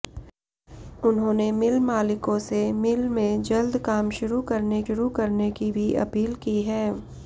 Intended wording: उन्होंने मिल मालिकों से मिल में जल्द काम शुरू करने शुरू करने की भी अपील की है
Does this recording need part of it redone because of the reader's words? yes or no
no